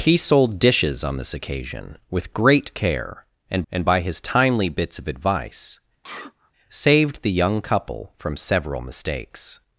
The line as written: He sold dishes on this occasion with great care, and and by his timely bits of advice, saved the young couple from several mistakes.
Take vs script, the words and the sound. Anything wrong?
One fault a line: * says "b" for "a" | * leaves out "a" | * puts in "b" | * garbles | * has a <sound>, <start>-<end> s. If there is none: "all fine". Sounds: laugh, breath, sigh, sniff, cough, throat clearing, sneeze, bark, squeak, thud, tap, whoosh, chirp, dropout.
* has a sneeze, 6.0-6.5 s